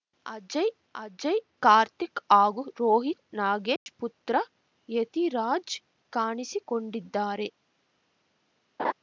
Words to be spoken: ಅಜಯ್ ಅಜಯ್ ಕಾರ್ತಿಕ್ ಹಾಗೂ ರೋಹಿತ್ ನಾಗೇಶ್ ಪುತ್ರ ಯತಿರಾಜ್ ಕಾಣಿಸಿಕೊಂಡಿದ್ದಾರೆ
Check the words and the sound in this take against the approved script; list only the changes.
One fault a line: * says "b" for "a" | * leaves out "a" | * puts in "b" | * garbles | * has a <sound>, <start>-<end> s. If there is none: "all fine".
* has a dropout, 3.8-3.9 s
* has a laugh, 8.8-8.9 s